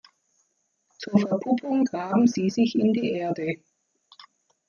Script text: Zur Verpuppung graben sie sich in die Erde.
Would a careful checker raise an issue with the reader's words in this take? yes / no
no